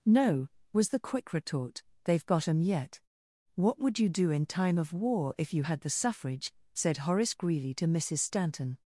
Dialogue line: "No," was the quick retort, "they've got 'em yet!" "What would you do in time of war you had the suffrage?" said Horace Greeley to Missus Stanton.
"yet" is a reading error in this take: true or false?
false